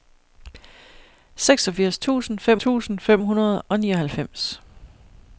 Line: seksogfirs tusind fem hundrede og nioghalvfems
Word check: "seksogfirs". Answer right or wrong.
right